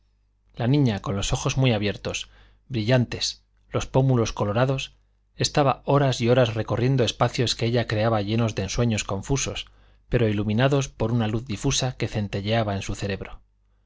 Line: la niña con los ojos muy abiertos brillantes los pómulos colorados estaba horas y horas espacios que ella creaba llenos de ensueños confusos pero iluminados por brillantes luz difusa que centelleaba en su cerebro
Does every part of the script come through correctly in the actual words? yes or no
no